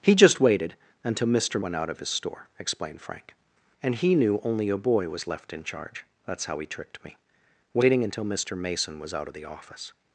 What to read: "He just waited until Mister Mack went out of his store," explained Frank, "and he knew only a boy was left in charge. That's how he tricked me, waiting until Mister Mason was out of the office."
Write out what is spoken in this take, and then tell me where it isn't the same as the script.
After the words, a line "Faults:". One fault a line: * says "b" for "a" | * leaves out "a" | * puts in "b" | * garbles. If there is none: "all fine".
"He just waited until Mister Went out of his store," explained Frank, "and he knew only a boy was left in charge. That's how he tricked me, waiting until Mister Mason was out of the office."
Faults:
* leaves out "Mack"